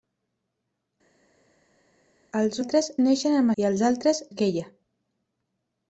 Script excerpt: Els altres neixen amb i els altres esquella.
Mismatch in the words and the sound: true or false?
false